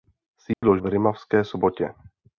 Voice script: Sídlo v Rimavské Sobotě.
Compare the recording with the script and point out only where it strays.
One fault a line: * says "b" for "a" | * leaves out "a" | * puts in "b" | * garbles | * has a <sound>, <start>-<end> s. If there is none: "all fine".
* has a dropout, 0.5-0.6 s